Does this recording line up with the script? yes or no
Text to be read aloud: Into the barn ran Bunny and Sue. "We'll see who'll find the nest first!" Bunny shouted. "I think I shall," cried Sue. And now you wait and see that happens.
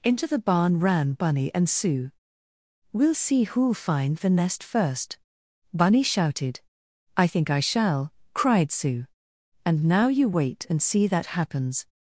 yes